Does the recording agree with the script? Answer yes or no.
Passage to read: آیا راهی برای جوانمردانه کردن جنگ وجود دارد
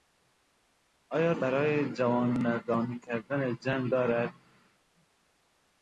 no